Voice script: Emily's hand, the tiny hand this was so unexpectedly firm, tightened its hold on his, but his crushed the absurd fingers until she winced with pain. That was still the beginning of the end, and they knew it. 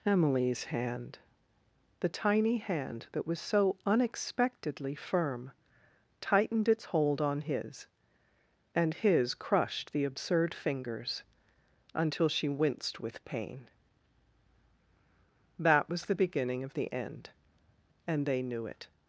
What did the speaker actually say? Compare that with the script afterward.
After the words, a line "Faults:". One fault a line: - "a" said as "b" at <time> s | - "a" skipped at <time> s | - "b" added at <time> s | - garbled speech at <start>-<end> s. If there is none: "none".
Emily's hand, the tiny hand that was so unexpectedly firm, tightened its hold on his, and his crushed the absurd fingers until she winced with pain. That was the beginning of the end, and they knew it.
Faults:
- "this" said as "that" at 3.1 s
- "but" said as "and" at 8.7 s
- "still" skipped at 16.1 s